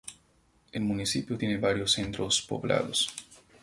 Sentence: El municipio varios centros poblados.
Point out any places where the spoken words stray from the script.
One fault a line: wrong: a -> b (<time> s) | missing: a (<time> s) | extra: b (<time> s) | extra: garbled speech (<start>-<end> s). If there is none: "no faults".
extra: tiene (1.4 s)